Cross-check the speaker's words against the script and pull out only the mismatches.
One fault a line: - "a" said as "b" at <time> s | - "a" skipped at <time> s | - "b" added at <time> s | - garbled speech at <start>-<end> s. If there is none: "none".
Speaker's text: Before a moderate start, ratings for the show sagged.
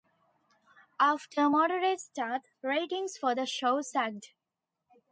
- "Before" said as "After" at 1.0 s